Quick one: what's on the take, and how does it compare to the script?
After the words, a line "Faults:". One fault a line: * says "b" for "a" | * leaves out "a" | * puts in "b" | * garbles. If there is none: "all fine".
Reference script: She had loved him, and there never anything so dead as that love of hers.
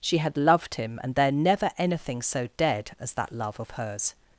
She had loved him, and there never anything so dead as that love of hers.
Faults:
all fine